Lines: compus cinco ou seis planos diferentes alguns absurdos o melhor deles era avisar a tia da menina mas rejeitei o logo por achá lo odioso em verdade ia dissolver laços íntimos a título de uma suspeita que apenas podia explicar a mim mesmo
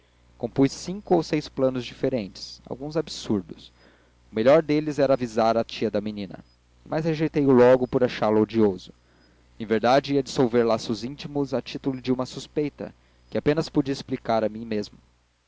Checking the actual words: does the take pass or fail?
pass